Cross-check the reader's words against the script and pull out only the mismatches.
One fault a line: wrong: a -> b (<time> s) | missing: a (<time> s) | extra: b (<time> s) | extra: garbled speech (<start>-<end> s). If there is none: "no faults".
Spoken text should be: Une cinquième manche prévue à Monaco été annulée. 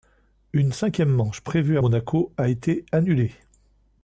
extra: a (2.4 s)